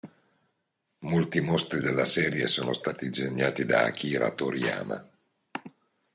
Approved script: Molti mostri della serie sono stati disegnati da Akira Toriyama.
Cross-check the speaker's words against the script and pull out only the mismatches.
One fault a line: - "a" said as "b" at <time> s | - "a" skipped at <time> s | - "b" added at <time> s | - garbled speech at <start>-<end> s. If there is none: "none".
none